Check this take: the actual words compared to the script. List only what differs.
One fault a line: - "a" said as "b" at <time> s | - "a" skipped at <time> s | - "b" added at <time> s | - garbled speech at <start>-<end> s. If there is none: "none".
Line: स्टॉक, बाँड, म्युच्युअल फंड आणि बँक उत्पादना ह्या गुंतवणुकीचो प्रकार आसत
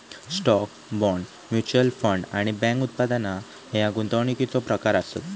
none